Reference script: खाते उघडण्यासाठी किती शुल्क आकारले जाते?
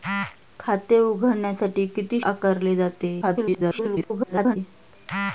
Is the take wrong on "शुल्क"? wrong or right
wrong